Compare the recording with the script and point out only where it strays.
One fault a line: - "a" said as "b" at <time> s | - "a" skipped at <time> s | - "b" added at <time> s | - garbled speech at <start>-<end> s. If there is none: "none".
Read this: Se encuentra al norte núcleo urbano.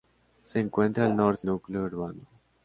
none